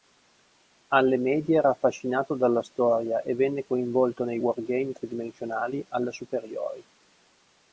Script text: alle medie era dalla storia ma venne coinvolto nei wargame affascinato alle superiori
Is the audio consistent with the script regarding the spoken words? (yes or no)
no